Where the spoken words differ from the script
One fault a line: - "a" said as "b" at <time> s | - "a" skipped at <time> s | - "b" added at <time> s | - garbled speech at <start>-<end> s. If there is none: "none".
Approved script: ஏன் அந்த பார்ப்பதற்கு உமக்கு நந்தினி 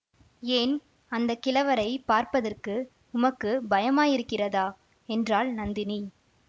- "கிழவரைப்" added at 1.4 s
- "பயமாயிருக்கிறதா என்றாள்" added at 3.7 s